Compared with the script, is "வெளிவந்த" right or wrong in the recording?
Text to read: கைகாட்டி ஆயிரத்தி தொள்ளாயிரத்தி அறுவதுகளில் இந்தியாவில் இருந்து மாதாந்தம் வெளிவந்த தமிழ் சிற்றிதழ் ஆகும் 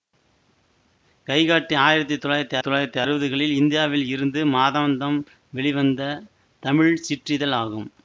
right